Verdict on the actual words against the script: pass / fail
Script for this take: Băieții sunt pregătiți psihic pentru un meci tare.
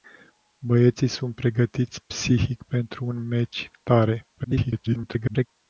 fail